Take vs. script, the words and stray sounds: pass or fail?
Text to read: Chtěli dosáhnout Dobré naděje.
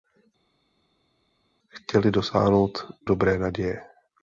pass